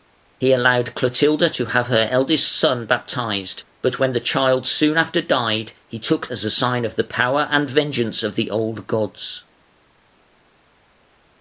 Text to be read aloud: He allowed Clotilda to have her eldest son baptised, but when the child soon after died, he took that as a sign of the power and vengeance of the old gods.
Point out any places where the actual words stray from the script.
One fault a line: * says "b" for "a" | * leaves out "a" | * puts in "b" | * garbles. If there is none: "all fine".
* leaves out "that"